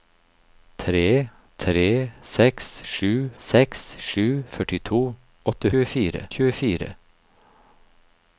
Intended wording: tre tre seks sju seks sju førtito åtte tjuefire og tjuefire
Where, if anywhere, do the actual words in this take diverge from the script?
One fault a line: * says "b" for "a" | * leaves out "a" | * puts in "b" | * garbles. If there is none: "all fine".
all fine